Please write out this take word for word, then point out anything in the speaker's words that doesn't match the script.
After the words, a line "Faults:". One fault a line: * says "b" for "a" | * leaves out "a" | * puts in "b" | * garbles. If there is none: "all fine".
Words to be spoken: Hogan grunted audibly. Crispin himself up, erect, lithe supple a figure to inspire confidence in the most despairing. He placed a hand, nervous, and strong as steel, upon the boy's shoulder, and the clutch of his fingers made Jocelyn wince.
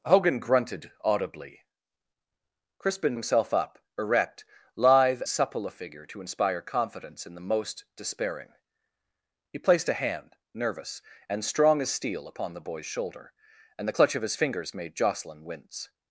Hogan grunted audibly. Crispin himself up, erect, lithe supple a figure to inspire confidence in the most despairing. He placed a hand, nervous, and strong as steel, upon the boy's shoulder, and the clutch of his fingers made Jocelyn wince.
Faults:
all fine